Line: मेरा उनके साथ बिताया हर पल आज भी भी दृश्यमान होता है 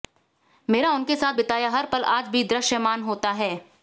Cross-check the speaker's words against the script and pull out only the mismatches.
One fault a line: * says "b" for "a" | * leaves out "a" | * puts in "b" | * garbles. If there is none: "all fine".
* leaves out "भी"